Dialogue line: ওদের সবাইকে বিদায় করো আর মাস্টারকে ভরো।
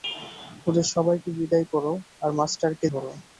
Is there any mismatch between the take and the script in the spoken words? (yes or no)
no